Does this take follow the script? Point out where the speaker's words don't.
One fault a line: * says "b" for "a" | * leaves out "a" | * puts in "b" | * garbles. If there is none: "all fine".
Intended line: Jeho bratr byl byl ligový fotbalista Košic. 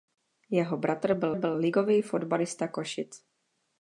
all fine